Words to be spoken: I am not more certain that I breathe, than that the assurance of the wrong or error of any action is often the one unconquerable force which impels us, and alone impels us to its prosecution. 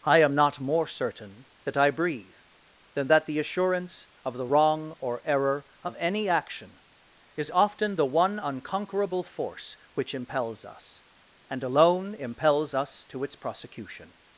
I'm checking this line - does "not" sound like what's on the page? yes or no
yes